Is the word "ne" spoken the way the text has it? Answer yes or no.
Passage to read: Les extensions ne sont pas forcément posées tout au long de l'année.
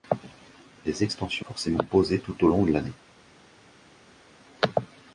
no